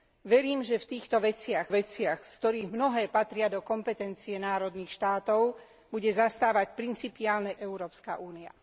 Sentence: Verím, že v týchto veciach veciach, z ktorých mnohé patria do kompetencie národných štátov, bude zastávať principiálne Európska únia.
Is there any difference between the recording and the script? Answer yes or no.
no